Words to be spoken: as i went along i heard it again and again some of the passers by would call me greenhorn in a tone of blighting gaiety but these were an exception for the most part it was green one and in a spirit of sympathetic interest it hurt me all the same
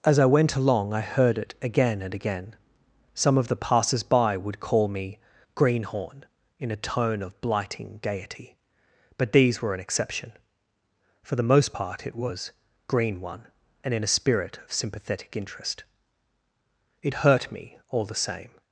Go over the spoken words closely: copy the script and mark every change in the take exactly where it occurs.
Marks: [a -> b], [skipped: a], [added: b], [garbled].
as i went along i heard it again and again some of the passers by would call me greenhorn in a tone of blighting gaiety but these were an exception for the most part it was green one and in a spirit of sympathetic interest it hurt me all the same